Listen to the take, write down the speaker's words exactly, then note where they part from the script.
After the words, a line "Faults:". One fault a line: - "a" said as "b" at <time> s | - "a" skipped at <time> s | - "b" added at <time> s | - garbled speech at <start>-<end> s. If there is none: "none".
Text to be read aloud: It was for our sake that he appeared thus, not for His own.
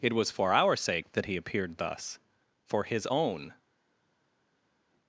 It was for our sake that he appeared thus, for His own.
Faults:
- "not" skipped at 2.2 s